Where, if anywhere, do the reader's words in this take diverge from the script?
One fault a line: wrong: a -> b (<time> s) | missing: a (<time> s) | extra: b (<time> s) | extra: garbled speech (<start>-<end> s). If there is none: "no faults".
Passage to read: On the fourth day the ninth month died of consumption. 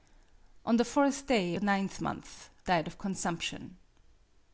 no faults